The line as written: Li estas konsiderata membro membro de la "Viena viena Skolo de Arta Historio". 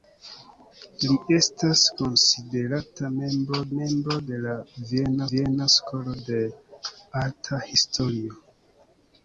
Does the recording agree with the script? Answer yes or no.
yes